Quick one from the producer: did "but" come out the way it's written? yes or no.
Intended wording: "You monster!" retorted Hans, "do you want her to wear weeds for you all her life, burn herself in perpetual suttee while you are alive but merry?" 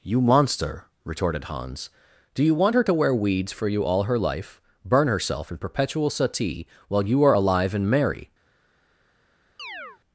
no